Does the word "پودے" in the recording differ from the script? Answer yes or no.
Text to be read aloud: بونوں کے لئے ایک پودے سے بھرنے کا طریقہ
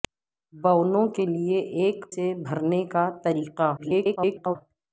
yes